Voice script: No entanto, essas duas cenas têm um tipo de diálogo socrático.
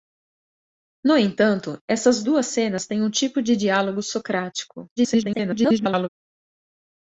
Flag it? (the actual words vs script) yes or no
yes